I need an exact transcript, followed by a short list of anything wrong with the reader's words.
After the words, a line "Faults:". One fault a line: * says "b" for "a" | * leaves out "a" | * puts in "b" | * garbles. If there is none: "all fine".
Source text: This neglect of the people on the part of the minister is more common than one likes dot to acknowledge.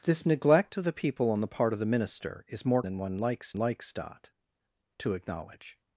This neglect of the people on the part of the minister is more than one likes likes dot to acknowledge.
Faults:
* leaves out "common"
* puts in "likes"